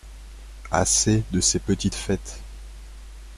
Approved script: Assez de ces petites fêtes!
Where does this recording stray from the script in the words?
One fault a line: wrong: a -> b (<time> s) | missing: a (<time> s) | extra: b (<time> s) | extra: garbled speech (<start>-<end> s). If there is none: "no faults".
no faults